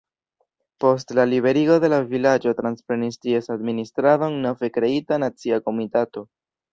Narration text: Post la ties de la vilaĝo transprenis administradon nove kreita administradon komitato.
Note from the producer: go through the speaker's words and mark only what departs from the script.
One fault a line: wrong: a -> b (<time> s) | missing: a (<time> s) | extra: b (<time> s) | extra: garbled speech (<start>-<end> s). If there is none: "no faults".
wrong: ties -> liberigo (1.3 s)
extra: ties (3.2 s)
wrong: administradon -> nacia (5.2 s)